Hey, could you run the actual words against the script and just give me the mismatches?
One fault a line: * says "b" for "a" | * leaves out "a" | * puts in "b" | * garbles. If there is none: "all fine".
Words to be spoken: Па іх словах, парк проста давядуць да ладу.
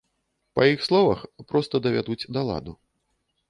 * leaves out "парк"